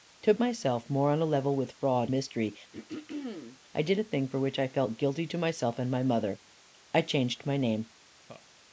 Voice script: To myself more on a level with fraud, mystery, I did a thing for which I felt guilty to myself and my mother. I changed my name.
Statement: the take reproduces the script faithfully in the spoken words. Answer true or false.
true